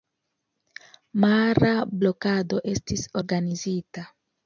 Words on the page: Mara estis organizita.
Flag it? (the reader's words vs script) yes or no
yes